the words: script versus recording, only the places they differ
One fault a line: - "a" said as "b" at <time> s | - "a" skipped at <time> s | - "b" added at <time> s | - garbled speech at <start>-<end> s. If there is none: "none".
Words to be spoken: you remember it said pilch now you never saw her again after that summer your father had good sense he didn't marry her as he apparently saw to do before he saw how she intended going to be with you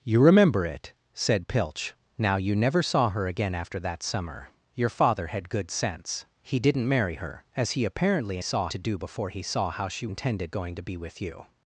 none